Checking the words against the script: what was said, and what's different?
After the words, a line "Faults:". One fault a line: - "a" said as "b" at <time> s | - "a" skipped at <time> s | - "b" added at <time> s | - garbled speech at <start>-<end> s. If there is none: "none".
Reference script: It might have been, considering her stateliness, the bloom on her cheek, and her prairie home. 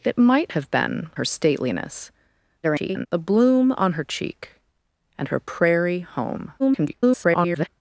It might have been, her stateliness, [garbled] the bloom on her cheek, and her prairie home. [garbled]
Faults:
- "considering" skipped at 1.1 s
- garbled speech at 2.6-3.1 s
- garbled speech at 6.6-7.7 s